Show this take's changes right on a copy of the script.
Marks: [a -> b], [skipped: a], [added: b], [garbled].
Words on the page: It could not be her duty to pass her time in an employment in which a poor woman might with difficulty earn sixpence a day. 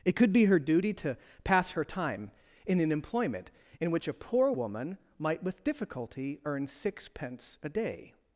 It could [skipped: not] be her duty to pass her time in an employment in which a poor woman might with difficulty earn sixpence a day.